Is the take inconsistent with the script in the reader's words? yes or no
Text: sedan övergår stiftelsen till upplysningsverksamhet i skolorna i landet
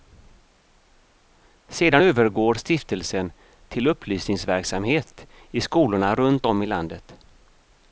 yes